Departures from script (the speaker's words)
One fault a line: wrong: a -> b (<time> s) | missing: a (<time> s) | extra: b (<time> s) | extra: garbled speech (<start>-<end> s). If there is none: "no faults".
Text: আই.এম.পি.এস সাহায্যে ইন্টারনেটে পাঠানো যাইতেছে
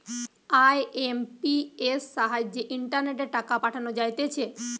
extra: টাকা (3.4 s)